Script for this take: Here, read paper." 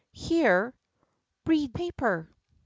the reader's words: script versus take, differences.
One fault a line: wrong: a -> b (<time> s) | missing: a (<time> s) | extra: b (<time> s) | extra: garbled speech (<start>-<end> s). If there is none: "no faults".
no faults